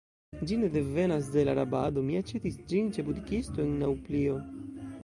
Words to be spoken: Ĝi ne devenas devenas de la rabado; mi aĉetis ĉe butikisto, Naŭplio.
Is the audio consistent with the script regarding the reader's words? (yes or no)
no